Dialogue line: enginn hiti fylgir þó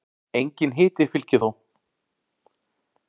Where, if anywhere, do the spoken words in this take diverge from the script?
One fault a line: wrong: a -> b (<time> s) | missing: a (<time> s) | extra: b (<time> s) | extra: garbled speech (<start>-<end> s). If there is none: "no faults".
no faults